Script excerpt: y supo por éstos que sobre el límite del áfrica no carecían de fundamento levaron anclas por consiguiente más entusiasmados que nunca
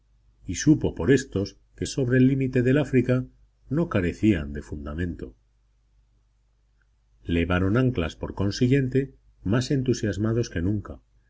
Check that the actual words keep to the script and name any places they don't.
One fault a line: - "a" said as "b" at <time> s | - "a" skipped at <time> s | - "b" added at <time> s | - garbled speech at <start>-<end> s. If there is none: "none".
none